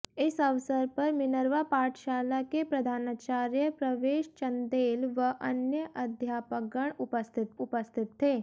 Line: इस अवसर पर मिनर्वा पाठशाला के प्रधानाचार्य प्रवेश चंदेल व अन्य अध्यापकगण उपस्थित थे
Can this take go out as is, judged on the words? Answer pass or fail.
fail